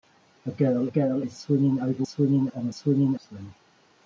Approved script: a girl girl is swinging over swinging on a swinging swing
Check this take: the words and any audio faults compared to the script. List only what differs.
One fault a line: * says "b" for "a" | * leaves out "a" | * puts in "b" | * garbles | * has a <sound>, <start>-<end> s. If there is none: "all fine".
all fine